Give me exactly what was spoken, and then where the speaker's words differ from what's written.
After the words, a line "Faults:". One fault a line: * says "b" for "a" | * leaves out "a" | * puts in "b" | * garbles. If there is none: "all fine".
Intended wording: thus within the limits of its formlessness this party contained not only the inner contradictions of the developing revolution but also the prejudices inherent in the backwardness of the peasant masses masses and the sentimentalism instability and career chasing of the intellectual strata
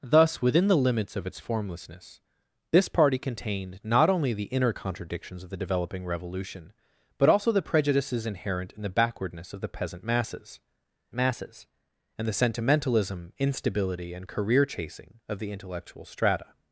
thus within the limits of its formlessness this party contained not only the inner contradictions of the developing revolution but also the prejudices inherent in the backwardness of the peasant masses masses and the sentimentalism instability and career chasing of the intellectual strata
Faults:
all fine